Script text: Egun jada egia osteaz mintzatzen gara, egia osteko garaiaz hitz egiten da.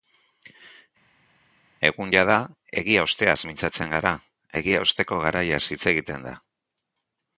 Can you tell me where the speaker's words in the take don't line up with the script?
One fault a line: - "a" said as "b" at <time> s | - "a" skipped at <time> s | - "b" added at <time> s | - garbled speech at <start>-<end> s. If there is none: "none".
none